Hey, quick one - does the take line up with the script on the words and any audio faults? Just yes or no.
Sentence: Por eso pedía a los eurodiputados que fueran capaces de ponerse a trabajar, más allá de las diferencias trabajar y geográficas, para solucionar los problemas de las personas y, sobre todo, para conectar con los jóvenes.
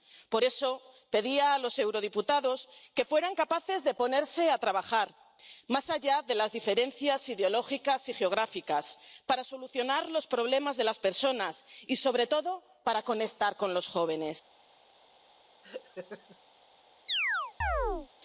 no